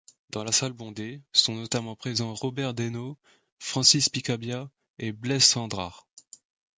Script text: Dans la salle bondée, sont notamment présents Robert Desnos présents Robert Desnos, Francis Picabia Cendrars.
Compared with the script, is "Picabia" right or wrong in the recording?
wrong